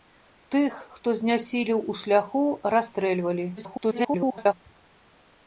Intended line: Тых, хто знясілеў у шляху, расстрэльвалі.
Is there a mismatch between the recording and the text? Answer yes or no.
yes